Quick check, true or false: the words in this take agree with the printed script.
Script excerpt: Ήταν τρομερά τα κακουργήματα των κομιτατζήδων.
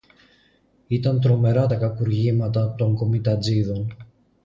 true